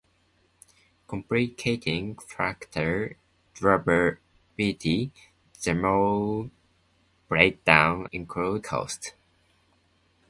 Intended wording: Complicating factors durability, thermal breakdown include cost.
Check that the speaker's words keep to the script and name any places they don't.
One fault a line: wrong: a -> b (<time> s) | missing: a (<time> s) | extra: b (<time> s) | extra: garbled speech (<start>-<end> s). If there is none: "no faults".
no faults